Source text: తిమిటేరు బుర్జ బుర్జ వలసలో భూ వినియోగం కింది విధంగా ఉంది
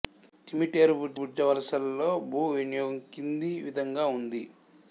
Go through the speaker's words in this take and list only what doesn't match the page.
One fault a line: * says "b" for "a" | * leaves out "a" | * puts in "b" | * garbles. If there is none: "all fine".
all fine